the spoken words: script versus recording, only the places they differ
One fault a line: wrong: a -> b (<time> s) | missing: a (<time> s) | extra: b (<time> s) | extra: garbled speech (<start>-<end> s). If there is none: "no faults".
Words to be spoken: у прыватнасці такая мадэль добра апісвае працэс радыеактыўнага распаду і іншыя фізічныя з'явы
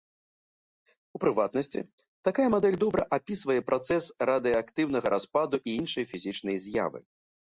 no faults